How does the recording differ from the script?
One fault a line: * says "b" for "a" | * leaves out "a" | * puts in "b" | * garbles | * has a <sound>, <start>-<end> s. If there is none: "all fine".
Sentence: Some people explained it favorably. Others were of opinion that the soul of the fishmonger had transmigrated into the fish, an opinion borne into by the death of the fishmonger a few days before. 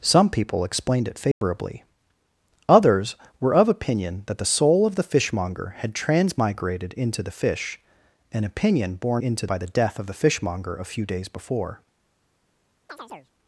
* has a dropout, 1.3-1.4 s
* has a chirp, 12.9-13.3 s